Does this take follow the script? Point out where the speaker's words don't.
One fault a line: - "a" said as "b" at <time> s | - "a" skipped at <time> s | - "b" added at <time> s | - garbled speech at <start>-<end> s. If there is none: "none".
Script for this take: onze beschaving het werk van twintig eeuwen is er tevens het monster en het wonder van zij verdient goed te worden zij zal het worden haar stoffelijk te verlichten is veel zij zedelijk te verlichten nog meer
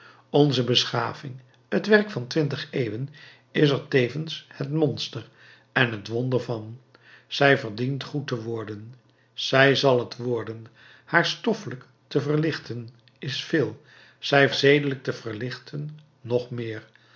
none